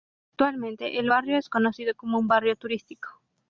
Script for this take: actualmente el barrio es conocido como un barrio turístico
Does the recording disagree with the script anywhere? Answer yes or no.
no